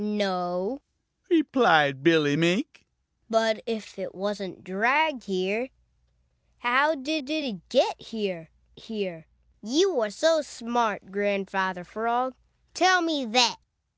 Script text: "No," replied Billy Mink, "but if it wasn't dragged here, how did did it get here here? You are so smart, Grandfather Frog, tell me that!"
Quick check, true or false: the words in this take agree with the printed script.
true